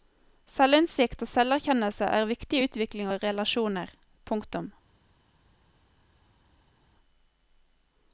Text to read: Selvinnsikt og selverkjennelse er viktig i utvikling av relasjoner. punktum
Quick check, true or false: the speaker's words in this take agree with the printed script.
true